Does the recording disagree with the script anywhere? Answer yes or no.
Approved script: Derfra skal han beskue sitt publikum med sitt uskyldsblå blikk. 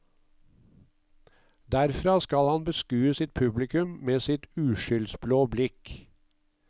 no